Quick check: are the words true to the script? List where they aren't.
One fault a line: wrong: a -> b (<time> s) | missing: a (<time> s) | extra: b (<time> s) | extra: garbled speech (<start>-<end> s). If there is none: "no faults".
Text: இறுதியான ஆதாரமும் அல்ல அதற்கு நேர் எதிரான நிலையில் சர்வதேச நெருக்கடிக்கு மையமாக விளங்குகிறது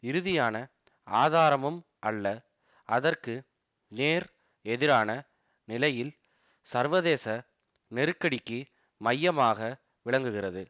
no faults